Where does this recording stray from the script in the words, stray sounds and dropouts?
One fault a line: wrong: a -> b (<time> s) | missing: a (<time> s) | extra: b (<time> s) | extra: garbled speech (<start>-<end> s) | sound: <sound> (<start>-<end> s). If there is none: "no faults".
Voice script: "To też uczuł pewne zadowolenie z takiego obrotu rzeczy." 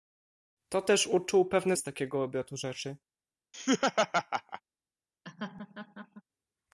missing: zadowolenie (1.8 s)
sound: laugh (3.5-4.6 s)
sound: laugh (5.2-6.2 s)